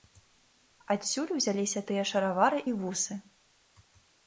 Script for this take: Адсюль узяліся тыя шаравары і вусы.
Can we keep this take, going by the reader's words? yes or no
yes